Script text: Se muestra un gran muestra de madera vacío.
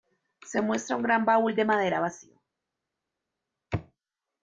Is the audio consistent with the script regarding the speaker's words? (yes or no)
no